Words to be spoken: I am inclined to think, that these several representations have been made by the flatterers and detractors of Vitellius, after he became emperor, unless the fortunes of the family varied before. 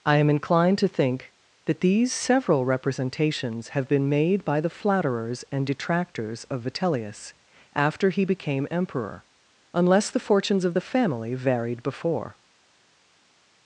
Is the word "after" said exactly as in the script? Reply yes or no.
yes